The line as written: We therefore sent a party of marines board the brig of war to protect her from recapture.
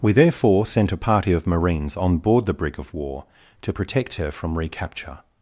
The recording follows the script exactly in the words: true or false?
false